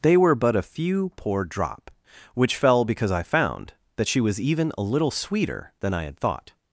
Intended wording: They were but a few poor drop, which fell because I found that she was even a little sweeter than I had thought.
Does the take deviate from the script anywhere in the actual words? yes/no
no